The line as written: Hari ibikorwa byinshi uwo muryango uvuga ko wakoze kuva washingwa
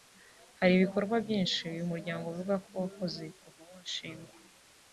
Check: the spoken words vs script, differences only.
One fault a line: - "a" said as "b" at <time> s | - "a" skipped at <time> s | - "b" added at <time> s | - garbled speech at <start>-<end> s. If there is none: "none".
- "uwo" said as "uyu" at 1.7 s